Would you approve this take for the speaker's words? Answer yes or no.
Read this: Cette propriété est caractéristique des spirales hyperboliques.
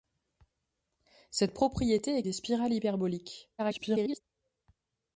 no